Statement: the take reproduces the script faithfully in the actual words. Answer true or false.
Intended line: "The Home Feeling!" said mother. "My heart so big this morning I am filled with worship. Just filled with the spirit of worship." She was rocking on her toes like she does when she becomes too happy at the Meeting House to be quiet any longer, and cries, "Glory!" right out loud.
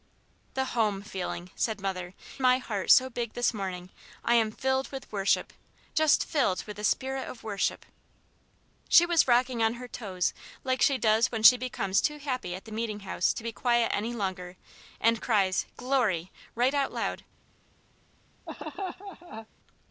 true